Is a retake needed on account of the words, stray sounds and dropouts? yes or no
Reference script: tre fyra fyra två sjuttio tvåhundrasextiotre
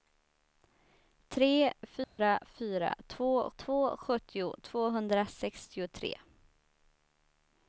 yes